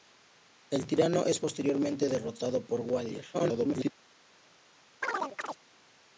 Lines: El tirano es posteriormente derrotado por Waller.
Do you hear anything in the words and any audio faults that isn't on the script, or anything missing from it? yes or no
yes